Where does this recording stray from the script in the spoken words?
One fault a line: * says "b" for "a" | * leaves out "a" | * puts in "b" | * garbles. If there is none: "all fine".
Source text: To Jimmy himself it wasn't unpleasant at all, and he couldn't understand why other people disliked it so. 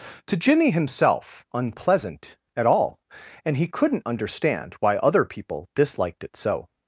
* leaves out "it wasn't"